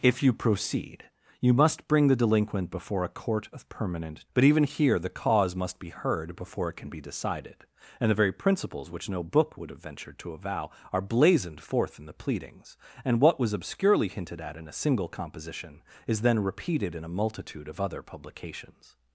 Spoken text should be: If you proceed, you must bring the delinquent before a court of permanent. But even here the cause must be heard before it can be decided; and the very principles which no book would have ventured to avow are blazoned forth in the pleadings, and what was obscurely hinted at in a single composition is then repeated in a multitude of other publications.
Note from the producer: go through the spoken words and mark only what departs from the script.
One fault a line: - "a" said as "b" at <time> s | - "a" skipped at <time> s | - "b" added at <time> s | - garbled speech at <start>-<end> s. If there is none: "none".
none